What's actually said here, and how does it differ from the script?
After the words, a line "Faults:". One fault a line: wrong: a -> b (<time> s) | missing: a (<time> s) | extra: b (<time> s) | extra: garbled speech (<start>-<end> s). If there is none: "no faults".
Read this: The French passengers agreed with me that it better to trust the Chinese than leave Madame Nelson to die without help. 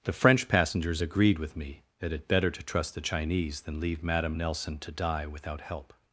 The French passengers agreed with me that it better to trust the Chinese than leave Madame Nelson to die without help.
Faults:
no faults